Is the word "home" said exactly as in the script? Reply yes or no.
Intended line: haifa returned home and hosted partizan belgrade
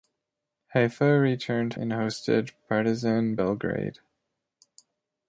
no